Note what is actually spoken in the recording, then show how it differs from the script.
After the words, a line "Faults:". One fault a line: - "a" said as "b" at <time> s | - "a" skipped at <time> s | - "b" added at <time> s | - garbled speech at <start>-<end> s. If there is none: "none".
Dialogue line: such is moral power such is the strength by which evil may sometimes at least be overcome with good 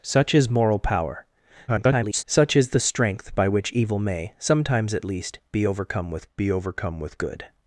such is moral power [garbled] such is the strength by which evil may sometimes at least be overcome with be overcome with good
Faults:
- garbled speech at 1.7-2.2 s
- "be overcome with" added at 6.4 s